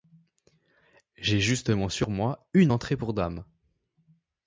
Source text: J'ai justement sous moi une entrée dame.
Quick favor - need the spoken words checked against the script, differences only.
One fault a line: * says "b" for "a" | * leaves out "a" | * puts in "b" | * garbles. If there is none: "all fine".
* says "sur" for "sous"
* puts in "pour"